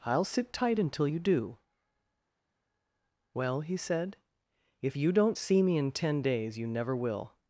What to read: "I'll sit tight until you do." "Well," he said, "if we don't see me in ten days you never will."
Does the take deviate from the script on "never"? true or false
false